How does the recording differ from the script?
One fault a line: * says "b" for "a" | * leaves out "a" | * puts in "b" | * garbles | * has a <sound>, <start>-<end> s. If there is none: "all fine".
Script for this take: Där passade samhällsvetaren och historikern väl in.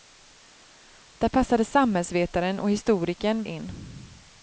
* leaves out "väl"